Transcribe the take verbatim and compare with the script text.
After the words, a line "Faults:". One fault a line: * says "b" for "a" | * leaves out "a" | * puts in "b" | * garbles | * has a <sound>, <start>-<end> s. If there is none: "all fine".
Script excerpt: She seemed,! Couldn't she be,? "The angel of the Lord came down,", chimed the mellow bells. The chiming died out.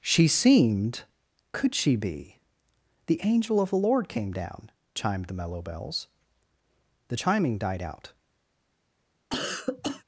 She seemed,! Could she be,? "The angel of the Lord came down,", chimed the mellow bells. The chiming died out.
Faults:
* says "Could" for "Couldn't"
* has a cough, 9.3-10.0 s